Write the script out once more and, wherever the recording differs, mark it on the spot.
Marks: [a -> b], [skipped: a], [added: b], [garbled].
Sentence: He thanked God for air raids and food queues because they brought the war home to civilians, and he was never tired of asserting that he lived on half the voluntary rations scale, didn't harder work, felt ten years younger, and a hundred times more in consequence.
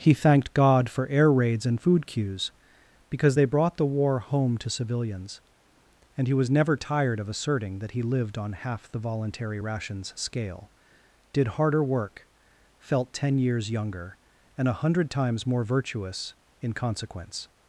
He thanked God for air raids and food queues because they brought the war home to civilians, and he was never tired of asserting that he lived on half the voluntary rations scale, [didn't -> did] harder work, felt ten years younger, and a hundred times more [added: virtuous] in consequence.